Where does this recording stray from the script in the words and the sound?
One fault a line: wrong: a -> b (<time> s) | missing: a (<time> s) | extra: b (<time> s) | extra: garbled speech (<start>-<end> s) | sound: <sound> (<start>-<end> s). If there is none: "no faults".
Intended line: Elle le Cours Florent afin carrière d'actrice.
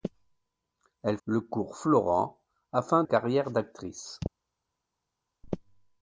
no faults